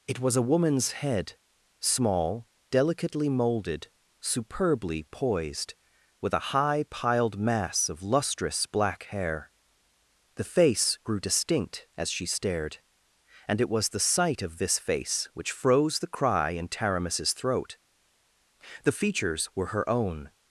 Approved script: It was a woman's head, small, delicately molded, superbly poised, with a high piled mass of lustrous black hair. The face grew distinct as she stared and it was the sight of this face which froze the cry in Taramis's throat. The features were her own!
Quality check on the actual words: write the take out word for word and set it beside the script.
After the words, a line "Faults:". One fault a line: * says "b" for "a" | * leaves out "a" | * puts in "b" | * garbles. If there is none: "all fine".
It was a woman's head, small, delicately molded, superbly poised, with a high piled mass of lustrous black hair. The face grew distinct as she stared and it was the sight of this face which froze the cry in Taramis's throat. The features were her own!
Faults:
all fine